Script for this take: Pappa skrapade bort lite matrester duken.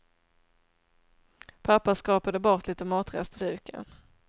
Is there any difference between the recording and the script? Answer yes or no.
no